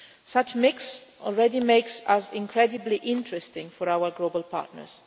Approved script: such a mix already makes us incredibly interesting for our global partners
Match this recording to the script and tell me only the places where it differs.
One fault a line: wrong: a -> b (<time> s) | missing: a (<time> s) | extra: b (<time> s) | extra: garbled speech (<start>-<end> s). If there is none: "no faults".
no faults